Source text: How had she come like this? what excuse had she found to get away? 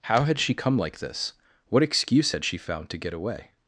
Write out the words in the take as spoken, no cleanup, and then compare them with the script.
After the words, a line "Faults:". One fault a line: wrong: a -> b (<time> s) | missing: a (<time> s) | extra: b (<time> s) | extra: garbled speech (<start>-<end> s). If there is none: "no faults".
How had she come like this? what excuse had she found to get away?
Faults:
no faults